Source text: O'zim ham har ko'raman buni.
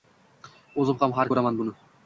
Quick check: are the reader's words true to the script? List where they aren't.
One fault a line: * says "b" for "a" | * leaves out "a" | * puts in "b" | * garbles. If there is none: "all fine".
all fine